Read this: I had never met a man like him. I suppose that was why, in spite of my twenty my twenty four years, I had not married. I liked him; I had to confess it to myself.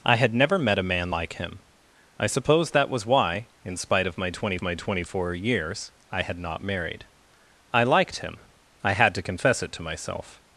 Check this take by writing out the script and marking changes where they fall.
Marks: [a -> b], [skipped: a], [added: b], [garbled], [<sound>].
I had never met a man like him. I suppose that was why, in spite of my twenty my twenty four years, I had not married. I liked him; I had to confess it to myself.